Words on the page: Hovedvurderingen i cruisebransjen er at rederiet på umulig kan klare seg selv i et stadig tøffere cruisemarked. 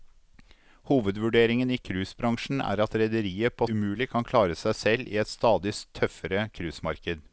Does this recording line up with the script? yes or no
yes